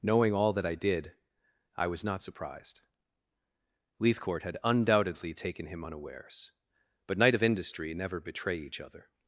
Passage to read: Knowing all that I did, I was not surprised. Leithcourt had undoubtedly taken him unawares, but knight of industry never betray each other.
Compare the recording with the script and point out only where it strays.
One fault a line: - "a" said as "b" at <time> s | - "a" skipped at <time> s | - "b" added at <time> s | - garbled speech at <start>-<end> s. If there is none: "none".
none